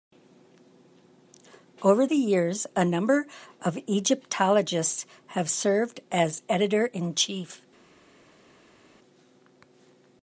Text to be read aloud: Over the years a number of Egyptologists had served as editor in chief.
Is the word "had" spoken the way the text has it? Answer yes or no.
no